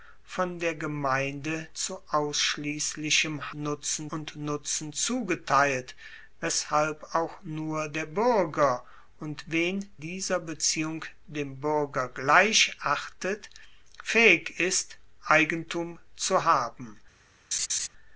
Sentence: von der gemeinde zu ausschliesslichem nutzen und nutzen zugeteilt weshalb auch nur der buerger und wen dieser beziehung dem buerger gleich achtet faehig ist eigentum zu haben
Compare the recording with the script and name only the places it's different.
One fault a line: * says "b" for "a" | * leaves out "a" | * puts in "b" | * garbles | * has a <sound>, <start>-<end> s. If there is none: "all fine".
* has a laugh, 17.5-17.9 s